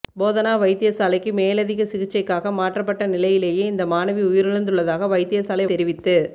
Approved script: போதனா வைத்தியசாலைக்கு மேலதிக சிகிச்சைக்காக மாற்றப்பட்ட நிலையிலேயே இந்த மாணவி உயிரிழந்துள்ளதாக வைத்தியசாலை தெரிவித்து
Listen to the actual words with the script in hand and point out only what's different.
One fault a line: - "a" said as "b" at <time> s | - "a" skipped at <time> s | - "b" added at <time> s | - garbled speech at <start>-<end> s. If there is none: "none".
none